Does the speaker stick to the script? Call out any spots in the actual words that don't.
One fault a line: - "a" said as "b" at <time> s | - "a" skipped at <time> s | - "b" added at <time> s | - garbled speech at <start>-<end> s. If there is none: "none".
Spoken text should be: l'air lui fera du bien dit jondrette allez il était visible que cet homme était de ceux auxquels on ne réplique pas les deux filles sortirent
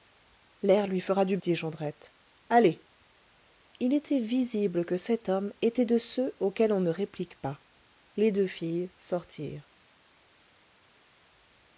- "bien" skipped at 1.4 s